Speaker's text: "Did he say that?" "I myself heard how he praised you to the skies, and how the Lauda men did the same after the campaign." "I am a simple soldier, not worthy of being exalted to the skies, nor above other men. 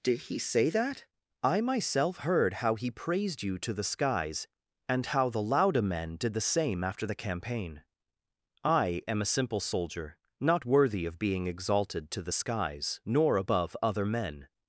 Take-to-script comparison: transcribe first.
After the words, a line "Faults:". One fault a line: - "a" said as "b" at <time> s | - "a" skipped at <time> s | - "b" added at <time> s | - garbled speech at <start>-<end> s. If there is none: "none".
"Did he say that?" "I myself heard how he praised you to the skies, and how the Lauda men did the same after the campaign." "I am a simple soldier, not worthy of being exalted to the skies, nor above other men.
Faults:
none